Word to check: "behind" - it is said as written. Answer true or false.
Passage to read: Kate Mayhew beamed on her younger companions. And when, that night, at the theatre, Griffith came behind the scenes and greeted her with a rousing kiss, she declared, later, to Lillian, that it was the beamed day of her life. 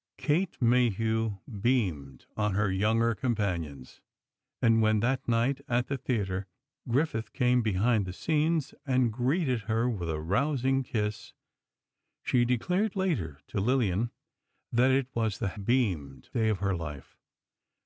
true